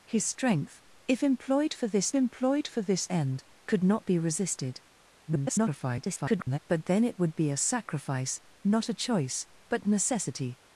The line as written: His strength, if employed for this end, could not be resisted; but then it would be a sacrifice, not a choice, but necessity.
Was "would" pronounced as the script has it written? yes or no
yes